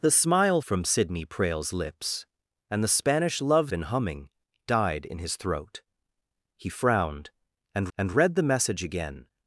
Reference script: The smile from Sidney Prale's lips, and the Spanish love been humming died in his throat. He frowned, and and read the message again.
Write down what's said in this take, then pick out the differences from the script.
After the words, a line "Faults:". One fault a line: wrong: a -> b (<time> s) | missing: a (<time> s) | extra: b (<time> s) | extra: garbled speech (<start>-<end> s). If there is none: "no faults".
The smile from Sidney Prale's lips, and the Spanish love been humming died in his throat. He frowned, and and read the message again.
Faults:
no faults